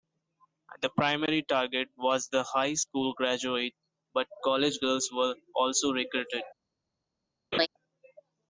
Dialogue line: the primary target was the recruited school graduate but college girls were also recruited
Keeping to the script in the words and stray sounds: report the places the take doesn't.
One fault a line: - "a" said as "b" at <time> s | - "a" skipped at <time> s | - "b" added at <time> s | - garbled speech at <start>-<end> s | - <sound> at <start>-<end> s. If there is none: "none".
- "recruited" said as "high" at 2.4 s
- laugh at 7.5-7.7 s